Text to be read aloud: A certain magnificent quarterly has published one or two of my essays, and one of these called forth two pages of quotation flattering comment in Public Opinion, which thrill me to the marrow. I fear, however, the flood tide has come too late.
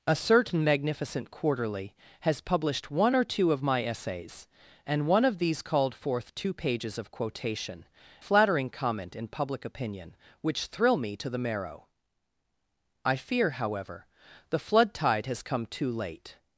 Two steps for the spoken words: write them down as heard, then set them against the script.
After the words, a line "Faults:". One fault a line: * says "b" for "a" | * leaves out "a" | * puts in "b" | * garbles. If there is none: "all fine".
A certain magnificent quarterly has published one or two of my essays, and one of these called forth two pages of quotation flattering comment in Public Opinion, which thrill me to the marrow. I fear, however, the flood tide has come too late.
Faults:
all fine